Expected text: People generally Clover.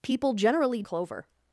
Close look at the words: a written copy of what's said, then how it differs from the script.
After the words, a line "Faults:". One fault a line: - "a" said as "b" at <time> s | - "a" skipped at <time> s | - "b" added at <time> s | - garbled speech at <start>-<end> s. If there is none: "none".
People generally Clover.
Faults:
none